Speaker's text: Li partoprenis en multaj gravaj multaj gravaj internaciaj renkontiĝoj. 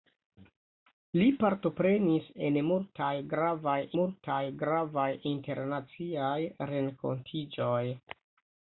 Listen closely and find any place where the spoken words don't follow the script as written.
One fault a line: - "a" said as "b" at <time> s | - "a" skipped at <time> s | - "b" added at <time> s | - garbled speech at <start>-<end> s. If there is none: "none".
none